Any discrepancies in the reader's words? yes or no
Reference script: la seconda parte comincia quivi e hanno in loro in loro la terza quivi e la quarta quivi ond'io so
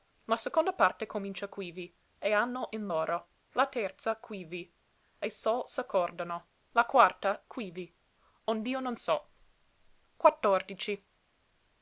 yes